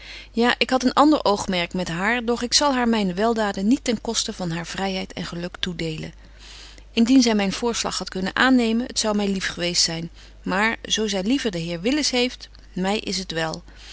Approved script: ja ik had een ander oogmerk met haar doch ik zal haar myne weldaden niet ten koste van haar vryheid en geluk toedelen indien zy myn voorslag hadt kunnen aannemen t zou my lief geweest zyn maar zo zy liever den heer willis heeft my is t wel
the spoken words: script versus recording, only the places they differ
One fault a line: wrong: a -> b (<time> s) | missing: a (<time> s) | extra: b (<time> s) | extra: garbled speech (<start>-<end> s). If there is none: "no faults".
no faults